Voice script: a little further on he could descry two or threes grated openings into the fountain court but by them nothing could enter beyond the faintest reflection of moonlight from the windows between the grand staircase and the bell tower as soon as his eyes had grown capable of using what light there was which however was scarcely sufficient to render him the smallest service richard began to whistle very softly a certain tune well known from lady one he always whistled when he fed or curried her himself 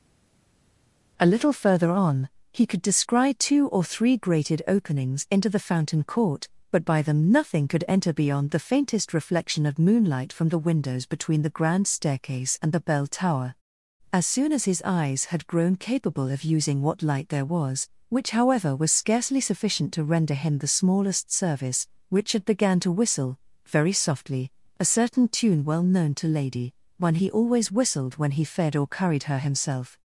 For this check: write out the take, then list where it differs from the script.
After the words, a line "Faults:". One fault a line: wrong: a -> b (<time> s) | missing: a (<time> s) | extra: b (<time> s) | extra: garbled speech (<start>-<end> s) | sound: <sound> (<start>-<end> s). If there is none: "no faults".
a little further on he could descry two or three grated openings into the fountain court but by them nothing could enter beyond the faintest reflection of moonlight from the windows between the grand staircase and the bell tower as soon as his eyes had grown capable of using what light there was which however was scarcely sufficient to render him the smallest service richard began to whistle very softly a certain tune well known to lady one he always whistled when he fed or curried her himself
Faults:
wrong: threes -> three (3.8 s)
wrong: from -> to (26.2 s)